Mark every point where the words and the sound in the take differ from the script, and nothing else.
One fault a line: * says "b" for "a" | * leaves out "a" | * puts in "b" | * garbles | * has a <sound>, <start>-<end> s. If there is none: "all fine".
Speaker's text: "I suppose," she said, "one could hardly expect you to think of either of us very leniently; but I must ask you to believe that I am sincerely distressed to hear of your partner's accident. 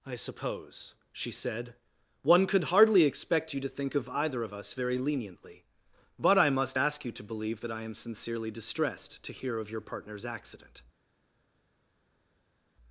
all fine